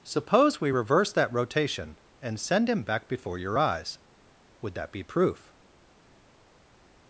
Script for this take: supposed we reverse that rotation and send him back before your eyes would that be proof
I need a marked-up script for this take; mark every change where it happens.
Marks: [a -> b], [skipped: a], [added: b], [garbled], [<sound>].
[supposed -> suppose] we reverse that rotation and send him back before your eyes would that be proof